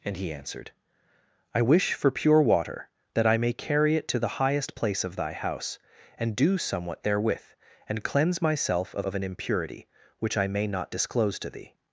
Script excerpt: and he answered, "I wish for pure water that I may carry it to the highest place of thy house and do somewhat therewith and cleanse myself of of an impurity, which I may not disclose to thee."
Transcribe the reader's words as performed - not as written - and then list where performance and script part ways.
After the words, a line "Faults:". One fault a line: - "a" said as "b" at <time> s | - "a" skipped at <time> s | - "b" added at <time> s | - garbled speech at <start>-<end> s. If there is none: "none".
and he answered, "I wish for pure water that I may carry it to the highest place of thy house and do somewhat therewith and cleanse myself of of an impurity, which I may not disclose to thee."
Faults:
none